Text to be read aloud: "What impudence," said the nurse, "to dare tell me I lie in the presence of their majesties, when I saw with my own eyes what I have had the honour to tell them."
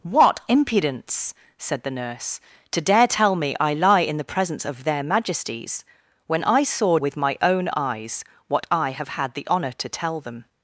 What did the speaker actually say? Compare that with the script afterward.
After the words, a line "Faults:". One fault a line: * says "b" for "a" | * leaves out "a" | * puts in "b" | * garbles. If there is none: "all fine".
"What impudence," said the nurse, "to dare tell me I lie in the presence of their majesties, when I saw with my own eyes what I have had the honour to tell them."
Faults:
all fine